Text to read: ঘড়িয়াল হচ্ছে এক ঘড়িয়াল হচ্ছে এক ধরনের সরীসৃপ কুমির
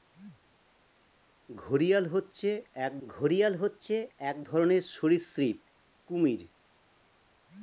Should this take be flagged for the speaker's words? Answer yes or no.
no